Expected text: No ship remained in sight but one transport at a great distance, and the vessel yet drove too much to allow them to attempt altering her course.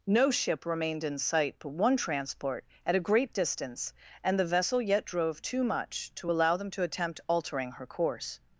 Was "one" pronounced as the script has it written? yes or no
yes